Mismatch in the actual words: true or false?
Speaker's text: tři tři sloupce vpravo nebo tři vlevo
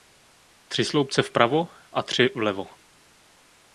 true